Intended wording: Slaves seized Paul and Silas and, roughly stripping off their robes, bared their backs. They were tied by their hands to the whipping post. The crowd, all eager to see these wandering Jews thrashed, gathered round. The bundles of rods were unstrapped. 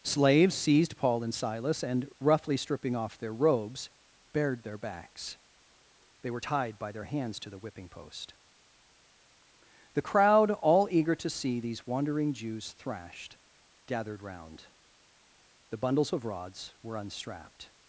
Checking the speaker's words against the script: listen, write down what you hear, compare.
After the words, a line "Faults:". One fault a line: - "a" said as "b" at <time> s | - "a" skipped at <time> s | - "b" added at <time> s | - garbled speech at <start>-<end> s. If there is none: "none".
Slaves seized Paul and Silas and, roughly stripping off their robes, bared their backs. They were tied by their hands to the whipping post. The crowd, all eager to see these wandering Jews thrashed, gathered round. The bundles of rods were unstrapped.
Faults:
none